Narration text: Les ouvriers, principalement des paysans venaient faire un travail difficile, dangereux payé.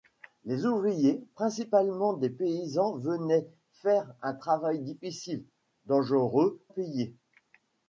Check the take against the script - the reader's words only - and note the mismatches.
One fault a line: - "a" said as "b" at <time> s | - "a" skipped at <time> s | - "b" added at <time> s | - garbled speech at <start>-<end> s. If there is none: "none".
none